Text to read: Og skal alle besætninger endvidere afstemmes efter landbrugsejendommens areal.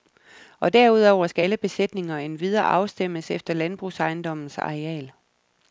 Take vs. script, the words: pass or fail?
fail